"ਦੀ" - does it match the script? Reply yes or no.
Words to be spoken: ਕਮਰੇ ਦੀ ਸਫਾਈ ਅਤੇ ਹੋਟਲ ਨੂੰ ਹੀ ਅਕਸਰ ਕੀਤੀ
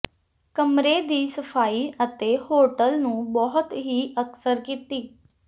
yes